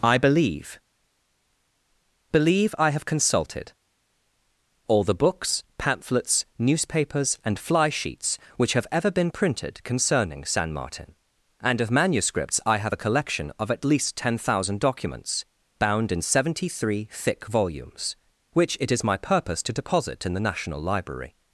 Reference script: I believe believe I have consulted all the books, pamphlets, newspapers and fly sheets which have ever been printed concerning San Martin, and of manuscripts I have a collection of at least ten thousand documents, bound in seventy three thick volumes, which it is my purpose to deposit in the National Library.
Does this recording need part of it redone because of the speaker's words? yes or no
no